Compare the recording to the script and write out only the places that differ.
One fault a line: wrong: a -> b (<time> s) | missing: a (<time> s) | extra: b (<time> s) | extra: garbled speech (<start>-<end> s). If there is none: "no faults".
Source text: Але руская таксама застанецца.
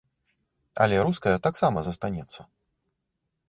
no faults